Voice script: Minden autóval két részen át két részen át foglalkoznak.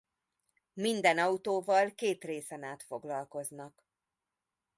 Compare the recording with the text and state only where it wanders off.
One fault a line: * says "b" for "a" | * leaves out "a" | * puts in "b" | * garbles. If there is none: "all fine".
* leaves out "két részen át"